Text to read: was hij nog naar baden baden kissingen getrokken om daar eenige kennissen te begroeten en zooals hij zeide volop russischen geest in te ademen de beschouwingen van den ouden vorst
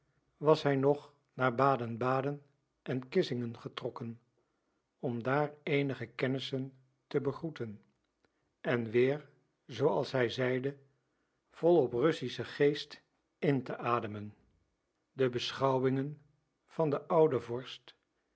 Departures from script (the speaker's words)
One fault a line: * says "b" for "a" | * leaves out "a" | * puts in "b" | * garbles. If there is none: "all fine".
* puts in "en"
* puts in "weer"